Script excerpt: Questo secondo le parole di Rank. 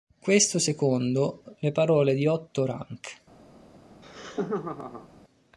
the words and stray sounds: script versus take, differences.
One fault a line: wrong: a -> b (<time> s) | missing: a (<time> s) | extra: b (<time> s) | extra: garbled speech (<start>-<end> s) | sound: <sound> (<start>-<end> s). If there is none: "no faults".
extra: Otto (2.3 s)
sound: laugh (3.9-5.1 s)